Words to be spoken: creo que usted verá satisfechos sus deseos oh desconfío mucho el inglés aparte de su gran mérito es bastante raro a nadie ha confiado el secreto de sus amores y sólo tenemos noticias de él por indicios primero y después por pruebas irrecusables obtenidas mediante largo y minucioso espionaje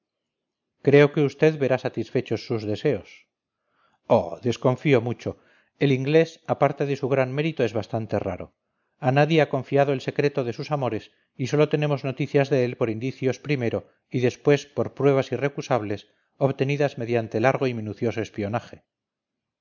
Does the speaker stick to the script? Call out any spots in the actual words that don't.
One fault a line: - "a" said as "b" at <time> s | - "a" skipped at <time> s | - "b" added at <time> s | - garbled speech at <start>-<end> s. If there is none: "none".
none